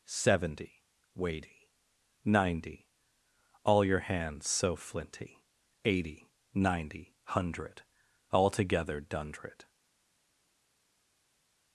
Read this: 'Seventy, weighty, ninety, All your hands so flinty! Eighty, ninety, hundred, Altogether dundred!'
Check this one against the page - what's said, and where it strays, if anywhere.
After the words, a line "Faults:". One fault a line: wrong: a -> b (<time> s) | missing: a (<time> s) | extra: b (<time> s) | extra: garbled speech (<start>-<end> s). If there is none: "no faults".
'Seventy, weighty, ninety, All your hands so flinty! Eighty, ninety, hundred, Altogether dundred!'
Faults:
no faults